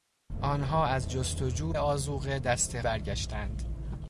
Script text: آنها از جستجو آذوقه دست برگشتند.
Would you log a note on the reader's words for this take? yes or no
no